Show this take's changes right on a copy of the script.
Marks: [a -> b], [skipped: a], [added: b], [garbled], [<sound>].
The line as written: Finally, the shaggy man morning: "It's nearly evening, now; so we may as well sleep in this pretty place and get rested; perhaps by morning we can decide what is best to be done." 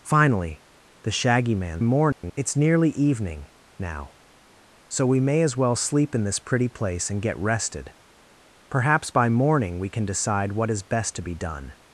Finally, the shaggy man morning: [dropout] "It's nearly evening, now; so we may as well sleep in this pretty place and get rested; perhaps by morning we can decide what is best to be done."